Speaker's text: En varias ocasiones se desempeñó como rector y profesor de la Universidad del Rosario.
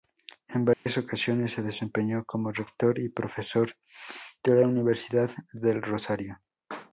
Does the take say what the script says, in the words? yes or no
yes